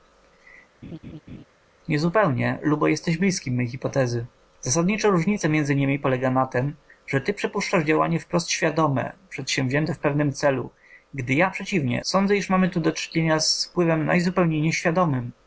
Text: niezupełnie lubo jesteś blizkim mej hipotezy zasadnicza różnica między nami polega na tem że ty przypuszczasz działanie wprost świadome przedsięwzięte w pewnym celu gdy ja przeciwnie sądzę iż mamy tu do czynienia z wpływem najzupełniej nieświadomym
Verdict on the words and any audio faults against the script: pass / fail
fail